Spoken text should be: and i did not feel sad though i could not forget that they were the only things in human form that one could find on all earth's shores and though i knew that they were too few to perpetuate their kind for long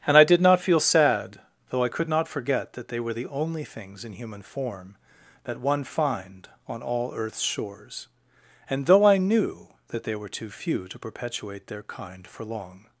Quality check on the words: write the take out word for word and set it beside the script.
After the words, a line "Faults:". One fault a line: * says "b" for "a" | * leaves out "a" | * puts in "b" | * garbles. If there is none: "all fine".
and i did not feel sad though i could not forget that they were the only things in human form that one find on all earth's shores and though i knew that they were too few to perpetuate their kind for long
Faults:
* leaves out "could"